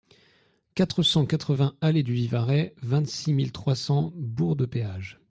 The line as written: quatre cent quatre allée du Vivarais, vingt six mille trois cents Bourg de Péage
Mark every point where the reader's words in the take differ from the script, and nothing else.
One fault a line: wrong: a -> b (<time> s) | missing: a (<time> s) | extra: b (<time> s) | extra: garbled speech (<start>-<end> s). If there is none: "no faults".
extra: vingts (1.5 s)